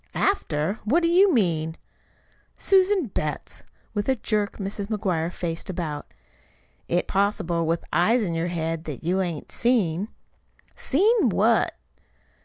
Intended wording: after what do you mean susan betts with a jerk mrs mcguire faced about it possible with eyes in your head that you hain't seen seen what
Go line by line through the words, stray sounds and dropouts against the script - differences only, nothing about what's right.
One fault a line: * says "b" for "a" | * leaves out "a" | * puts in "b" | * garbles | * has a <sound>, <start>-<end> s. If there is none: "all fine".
all fine